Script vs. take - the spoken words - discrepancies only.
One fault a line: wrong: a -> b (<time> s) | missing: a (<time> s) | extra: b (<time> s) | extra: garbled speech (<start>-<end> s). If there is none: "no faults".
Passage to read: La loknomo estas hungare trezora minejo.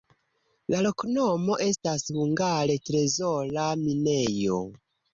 no faults